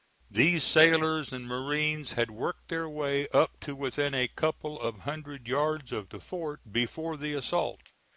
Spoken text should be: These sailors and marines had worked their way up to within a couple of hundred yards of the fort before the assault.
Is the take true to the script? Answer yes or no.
yes